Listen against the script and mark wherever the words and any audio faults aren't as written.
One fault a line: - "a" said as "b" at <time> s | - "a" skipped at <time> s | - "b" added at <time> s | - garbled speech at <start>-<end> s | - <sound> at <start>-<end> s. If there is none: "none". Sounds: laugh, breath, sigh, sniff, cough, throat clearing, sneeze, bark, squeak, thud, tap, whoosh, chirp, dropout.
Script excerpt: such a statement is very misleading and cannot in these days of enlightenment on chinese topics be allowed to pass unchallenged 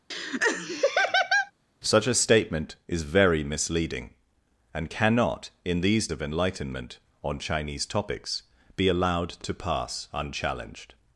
- laugh at 0.1-1.5 s
- "days" skipped at 6.1 s